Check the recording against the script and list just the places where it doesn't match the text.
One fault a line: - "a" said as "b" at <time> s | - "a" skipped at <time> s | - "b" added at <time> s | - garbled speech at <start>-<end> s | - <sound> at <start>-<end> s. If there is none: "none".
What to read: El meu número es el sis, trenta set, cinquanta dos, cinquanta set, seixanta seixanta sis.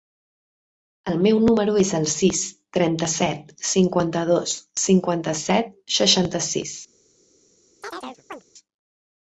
- "seixanta" skipped at 6.4 s
- chirp at 7.8-8.4 s